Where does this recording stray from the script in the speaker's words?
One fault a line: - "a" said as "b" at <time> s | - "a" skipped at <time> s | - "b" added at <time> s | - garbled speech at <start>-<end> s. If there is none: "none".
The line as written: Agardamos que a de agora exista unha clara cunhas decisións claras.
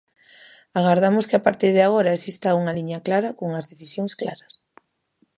- "partir" added at 1.5 s
- "liña" added at 2.8 s